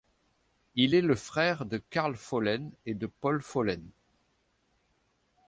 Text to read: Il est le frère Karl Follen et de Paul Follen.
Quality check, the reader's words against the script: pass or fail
fail